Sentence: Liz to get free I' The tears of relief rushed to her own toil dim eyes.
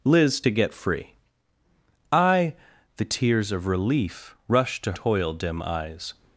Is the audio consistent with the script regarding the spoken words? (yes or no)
no